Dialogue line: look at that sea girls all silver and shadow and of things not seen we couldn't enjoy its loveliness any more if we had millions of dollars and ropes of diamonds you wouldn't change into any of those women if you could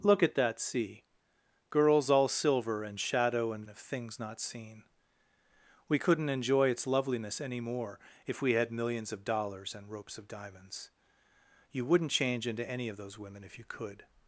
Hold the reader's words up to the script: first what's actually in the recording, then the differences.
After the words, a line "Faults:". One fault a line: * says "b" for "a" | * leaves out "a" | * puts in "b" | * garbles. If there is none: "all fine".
look at that sea girls all silver and shadow and of things not seen we couldn't enjoy its loveliness any more if we had millions of dollars and ropes of diamonds you wouldn't change into any of those women if you could
Faults:
all fine